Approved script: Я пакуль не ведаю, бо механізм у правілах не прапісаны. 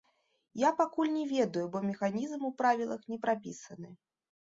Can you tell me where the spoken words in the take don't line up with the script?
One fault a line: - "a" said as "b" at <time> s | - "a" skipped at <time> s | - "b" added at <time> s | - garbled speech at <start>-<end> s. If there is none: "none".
none